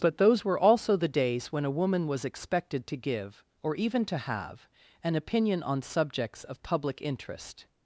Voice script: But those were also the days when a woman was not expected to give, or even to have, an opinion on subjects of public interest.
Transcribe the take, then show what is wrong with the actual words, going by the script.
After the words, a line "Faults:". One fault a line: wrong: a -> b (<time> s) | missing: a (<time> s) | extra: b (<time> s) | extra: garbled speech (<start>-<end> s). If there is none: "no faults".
But those were also the days when a woman was expected to give, or even to have, an opinion on subjects of public interest.
Faults:
missing: not (2.2 s)